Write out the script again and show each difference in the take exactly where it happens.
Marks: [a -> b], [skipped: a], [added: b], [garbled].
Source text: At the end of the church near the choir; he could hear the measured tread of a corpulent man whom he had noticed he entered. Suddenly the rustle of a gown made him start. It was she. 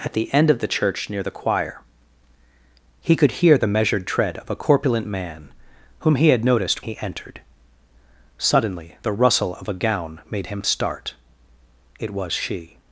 At the end of the church near the choir; he could hear the measured tread of a corpulent man whom he had noticed he entered. Suddenly the rustle of a gown made him start. It was she.